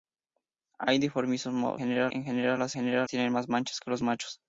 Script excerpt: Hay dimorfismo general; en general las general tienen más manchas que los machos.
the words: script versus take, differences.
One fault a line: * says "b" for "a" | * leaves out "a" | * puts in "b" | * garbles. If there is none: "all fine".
all fine